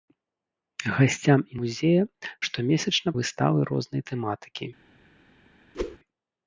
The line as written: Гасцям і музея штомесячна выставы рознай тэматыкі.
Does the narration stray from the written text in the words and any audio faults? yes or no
yes